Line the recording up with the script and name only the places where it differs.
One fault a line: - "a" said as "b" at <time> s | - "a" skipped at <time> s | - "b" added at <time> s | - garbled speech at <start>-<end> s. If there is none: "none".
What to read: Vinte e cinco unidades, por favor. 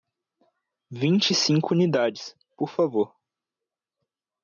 none